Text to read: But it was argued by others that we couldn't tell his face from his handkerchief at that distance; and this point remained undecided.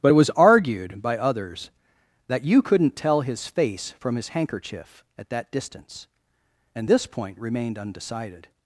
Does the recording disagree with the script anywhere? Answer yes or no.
yes